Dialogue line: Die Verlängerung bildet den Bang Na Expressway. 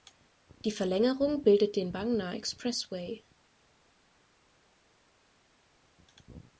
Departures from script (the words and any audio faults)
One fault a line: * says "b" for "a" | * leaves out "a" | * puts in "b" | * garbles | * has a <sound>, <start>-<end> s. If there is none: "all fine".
all fine